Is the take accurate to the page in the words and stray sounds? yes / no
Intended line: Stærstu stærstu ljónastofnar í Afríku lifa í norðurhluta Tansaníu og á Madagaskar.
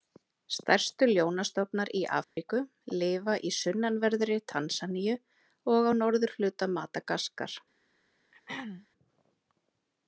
no